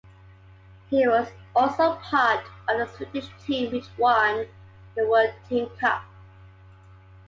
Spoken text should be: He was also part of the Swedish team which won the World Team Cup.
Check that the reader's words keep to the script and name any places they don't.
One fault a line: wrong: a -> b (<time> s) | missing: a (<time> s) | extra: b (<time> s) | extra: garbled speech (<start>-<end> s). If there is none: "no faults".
no faults